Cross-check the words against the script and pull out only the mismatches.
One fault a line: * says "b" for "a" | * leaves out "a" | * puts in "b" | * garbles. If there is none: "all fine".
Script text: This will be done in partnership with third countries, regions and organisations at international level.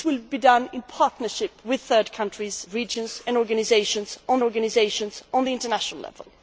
* puts in "organisations at"